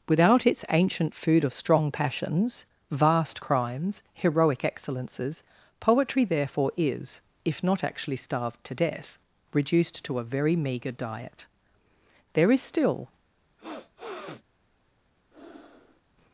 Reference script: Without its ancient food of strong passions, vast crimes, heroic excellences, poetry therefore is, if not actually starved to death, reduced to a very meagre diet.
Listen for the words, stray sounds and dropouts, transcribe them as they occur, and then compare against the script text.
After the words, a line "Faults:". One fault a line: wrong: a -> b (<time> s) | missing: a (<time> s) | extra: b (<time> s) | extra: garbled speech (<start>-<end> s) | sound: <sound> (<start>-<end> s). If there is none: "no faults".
Without its ancient food of strong passions, vast crimes, heroic excellences, poetry therefore is, if not actually starved to death, reduced to a very meagre diet. There is still
Faults:
extra: There is still (12.3 s)
sound: sniff (13.6-14.4 s)
sound: breath (15.3-16.0 s)